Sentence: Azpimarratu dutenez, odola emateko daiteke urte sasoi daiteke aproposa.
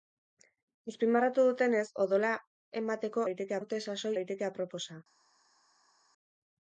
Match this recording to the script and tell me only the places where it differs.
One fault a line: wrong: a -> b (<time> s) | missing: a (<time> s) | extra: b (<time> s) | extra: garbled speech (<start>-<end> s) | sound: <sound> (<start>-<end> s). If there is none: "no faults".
no faults